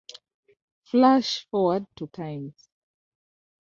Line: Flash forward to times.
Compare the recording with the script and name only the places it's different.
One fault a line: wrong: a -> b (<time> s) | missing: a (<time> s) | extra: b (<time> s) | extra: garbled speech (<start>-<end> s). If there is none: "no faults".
no faults